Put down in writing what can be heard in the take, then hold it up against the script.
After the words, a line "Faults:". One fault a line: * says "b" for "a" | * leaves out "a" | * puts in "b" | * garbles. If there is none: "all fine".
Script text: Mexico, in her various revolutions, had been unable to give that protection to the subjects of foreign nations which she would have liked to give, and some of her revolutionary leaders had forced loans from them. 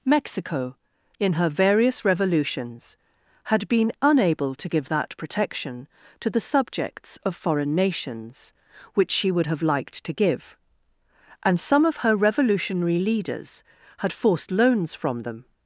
Mexico, in her various revolutions, had been unable to give that protection to the subjects of foreign nations which she would have liked to give, and some of her revolutionary leaders had forced loans from them.
Faults:
all fine